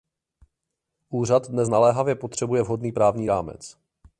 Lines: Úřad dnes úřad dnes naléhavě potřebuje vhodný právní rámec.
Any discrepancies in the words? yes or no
yes